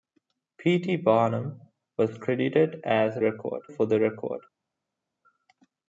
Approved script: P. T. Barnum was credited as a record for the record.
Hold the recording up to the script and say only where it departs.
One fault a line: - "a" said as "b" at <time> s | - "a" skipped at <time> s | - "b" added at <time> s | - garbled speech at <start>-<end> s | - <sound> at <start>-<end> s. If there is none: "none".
none